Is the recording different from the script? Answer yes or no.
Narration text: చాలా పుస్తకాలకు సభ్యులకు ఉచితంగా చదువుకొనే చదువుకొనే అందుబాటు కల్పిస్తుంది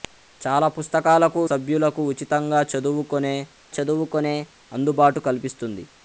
no